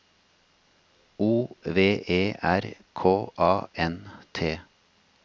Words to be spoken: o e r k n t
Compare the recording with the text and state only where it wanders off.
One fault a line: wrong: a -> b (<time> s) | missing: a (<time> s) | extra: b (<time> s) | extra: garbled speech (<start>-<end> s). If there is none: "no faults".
extra: v (1.6 s)
extra: a (3.4 s)